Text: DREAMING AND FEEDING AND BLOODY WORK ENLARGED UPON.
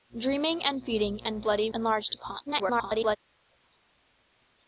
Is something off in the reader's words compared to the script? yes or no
yes